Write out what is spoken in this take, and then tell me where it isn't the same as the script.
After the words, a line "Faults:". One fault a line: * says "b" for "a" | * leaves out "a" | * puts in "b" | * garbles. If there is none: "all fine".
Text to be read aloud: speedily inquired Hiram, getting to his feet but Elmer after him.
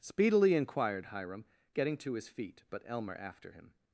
speedily inquired Hiram, getting to his feet but Elmer after him.
Faults:
all fine